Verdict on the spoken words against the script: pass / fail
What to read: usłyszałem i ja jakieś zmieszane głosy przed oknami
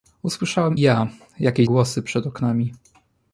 fail